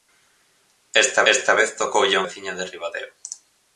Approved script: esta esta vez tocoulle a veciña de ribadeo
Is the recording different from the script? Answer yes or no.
no